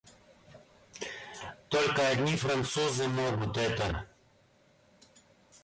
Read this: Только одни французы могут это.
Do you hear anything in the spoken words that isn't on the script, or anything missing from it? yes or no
no